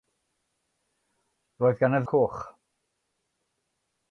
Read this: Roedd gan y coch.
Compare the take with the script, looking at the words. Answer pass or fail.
pass